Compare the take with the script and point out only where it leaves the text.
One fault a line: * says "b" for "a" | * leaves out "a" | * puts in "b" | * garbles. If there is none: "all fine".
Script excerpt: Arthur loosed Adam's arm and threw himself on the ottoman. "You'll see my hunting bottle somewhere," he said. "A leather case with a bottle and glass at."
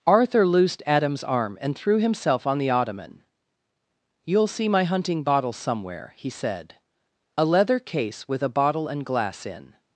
* says "in" for "at"